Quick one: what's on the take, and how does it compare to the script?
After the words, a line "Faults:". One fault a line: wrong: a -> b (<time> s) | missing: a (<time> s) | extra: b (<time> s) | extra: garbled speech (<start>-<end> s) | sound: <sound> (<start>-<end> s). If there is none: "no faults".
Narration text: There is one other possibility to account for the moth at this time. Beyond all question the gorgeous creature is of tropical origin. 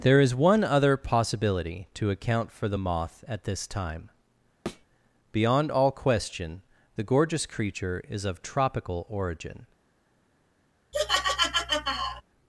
There is one other possibility to account for the moth at this time. Beyond all question the gorgeous creature is of tropical origin.
Faults:
sound: thud (4.7-4.9 s)
sound: laugh (10.9-12.2 s)